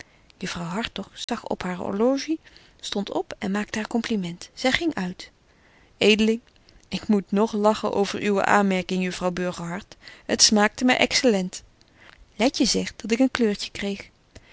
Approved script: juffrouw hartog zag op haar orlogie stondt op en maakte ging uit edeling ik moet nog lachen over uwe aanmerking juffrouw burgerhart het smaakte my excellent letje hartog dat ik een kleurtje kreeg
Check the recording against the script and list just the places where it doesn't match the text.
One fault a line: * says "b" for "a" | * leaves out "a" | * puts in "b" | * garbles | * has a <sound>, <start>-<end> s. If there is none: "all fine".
* has a dropout, 1.2-1.3 s
* puts in "haar compliment zy"
* says "zegt" for "hartog"